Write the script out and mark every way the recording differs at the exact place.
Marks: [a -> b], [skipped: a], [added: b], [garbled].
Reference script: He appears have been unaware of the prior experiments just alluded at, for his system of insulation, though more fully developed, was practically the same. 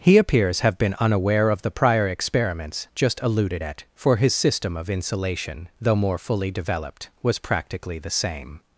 He appears have been unaware of the prior experiments just alluded at, for his system of insulation, though more fully developed, was practically the same.